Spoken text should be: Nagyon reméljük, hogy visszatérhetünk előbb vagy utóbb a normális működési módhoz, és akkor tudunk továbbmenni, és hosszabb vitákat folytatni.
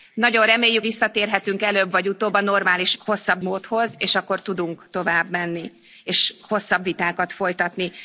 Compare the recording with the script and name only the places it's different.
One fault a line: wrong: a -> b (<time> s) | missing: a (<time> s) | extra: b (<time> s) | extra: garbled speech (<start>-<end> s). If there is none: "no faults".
missing: hogy (0.8 s)
wrong: működési -> hosszabb (3.0 s)